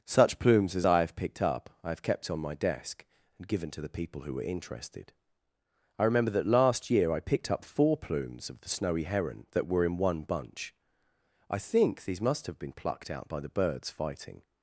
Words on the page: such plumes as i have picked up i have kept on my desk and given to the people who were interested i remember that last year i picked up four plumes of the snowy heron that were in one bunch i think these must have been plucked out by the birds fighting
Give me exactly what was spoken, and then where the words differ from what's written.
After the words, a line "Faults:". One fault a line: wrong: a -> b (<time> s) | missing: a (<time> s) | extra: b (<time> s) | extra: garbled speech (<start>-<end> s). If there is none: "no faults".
such plumes as i have picked up i have kept on my desk and given to the people who were interested i remember that last year i picked up four plumes of the snowy heron that were in one bunch i think these must have been plucked out by the birds fighting
Faults:
no faults